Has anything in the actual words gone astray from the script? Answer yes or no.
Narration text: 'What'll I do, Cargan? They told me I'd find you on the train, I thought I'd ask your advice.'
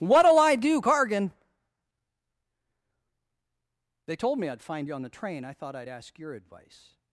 no